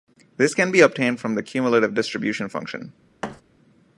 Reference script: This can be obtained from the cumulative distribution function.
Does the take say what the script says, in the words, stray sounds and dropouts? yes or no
no